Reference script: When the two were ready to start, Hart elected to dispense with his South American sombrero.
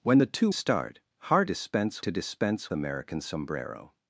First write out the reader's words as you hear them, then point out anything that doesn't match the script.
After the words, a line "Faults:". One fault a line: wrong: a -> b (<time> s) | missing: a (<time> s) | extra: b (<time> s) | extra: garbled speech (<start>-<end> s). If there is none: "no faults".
When the two start, Hart dispense to dispense American sombrero.
Faults:
missing: were ready to (0.5 s)
wrong: elected -> dispense (1.4 s)
missing: with his South (2.7 s)